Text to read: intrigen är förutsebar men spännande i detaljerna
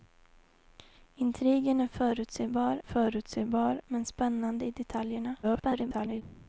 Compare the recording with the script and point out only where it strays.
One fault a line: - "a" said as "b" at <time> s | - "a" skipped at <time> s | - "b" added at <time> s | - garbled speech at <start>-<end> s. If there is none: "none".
- "förutsebar" added at 2.8 s
- garbled speech at 5.4-6.2 s